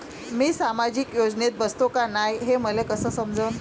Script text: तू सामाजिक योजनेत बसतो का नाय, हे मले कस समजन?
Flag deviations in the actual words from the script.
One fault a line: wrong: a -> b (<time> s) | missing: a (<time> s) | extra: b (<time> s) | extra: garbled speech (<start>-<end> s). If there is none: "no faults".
wrong: तू -> मी (0.3 s)